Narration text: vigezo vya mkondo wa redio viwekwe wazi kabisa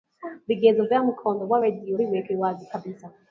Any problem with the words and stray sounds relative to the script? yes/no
no